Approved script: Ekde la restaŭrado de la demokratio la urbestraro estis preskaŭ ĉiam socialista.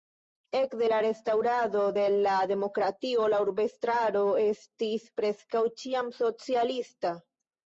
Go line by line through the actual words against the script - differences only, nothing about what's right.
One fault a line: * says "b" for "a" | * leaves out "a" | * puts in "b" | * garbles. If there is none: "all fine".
all fine